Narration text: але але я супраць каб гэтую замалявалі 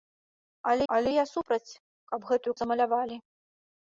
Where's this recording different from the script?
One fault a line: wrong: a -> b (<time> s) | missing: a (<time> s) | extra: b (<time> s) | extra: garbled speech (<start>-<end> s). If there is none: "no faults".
no faults